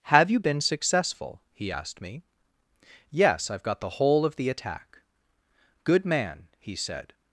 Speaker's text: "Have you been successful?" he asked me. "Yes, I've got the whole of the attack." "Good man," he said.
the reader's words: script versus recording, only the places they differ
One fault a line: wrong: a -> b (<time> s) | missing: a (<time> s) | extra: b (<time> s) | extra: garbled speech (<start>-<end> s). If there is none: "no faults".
no faults